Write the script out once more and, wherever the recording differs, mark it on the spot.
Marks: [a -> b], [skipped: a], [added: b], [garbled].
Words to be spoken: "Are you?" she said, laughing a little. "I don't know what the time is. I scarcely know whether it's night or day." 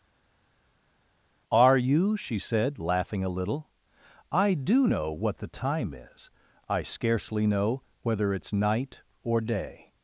"Are you?" she said, laughing a little. "I [don't -> do] know what the time is. I scarcely know whether it's night or day."